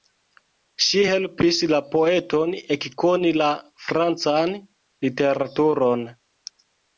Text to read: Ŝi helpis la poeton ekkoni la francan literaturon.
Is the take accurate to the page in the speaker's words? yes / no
yes